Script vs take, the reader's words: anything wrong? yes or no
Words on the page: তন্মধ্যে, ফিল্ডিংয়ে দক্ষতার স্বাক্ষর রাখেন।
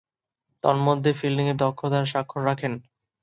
no